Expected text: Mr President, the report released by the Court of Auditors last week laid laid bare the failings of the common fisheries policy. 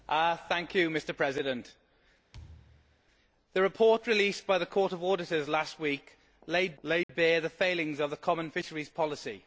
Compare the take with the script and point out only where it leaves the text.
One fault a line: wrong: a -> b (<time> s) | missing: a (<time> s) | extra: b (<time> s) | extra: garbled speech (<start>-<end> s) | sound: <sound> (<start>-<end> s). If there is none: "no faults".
sound: thud (2.3-3.0 s)
sound: dropout (7.0-7.1 s)